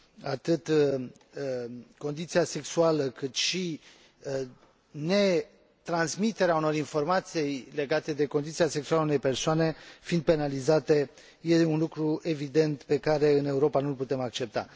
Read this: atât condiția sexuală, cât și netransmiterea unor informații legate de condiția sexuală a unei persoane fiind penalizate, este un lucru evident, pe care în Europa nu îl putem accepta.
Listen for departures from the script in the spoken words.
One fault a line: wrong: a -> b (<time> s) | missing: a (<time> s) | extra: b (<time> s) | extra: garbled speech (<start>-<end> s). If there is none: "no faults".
no faults